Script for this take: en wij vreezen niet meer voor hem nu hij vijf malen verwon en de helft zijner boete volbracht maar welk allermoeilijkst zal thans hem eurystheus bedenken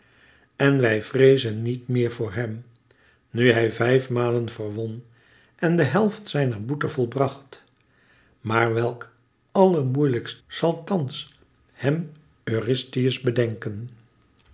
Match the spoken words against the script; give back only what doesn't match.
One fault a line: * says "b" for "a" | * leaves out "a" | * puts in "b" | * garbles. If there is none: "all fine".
all fine